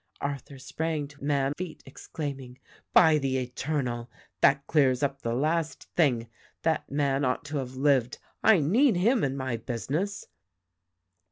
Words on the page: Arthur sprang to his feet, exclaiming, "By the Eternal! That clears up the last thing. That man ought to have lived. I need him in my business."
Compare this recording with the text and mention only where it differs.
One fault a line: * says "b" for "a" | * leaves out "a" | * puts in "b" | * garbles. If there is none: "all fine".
* says "man" for "his"